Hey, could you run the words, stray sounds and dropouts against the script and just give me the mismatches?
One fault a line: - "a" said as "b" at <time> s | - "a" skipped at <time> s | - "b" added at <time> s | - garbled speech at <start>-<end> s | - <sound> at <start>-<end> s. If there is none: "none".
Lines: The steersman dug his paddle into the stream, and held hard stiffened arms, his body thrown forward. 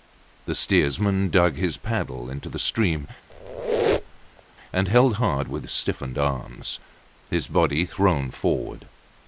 - squeak at 3.3-4.4 s
- "with" added at 5.4 s